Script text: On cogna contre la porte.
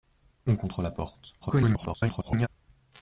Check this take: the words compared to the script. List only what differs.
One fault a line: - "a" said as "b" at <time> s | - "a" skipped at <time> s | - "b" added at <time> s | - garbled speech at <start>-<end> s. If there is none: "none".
- "cogna" skipped at 0.6 s
- garbled speech at 1.4-2.5 s